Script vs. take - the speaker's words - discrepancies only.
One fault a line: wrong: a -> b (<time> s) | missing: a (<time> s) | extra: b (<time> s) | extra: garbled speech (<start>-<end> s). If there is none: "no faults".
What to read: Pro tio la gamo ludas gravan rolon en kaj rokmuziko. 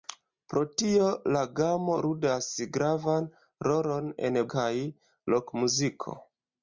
no faults